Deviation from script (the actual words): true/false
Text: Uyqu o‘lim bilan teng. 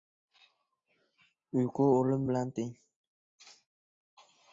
false